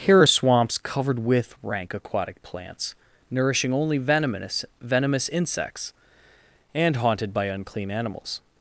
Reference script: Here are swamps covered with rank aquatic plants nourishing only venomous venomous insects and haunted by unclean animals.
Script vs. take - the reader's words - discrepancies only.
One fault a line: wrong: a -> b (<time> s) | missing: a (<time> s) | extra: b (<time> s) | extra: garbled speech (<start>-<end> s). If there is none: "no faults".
no faults